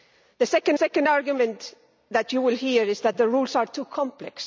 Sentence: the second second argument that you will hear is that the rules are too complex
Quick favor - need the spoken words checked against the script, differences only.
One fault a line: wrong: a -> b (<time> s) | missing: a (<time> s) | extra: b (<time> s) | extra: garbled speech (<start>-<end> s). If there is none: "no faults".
no faults